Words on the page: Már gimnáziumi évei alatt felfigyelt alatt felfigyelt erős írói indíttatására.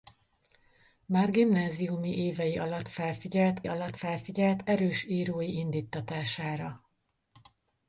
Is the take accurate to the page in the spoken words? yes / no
yes